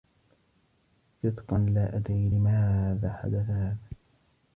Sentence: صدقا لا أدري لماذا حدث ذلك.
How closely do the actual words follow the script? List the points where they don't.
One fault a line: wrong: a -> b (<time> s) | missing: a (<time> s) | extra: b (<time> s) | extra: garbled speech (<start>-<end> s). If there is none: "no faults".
wrong: ذلك -> هذا (3.5 s)